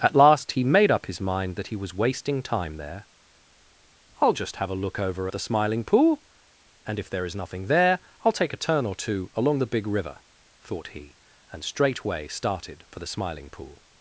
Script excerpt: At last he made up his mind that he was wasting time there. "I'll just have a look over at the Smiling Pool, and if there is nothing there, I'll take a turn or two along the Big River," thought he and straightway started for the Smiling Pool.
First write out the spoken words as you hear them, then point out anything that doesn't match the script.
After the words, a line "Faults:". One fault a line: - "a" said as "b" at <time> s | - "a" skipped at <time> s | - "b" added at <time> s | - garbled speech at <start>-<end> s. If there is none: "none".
At last he made up his mind that he was wasting time there. "I'll just have a look over the Smiling Pool, and if there is nothing there, I'll take a turn or two along the Big River," thought he and straightway started for the Smiling Pool.
Faults:
- "at" skipped at 5.3 s